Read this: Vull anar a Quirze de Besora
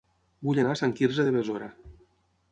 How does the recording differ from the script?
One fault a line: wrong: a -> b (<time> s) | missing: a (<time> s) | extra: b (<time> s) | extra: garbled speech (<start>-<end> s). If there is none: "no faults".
extra: Sant (0.8 s)